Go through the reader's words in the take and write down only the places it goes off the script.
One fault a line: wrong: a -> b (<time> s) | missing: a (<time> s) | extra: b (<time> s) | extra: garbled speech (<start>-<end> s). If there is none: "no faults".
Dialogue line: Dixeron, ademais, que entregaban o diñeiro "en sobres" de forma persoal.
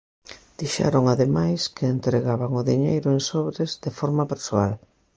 no faults